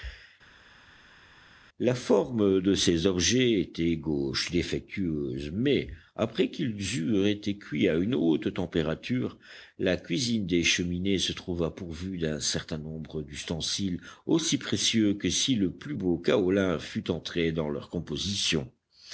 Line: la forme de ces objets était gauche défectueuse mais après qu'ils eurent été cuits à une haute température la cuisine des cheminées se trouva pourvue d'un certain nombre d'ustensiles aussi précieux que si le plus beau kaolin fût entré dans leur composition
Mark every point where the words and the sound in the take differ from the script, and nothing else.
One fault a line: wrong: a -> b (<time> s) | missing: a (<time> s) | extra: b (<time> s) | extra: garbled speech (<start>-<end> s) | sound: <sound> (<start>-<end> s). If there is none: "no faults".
no faults